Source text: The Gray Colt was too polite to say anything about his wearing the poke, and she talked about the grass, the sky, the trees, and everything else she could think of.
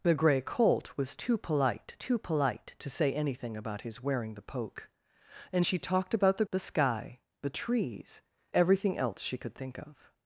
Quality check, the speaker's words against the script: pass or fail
fail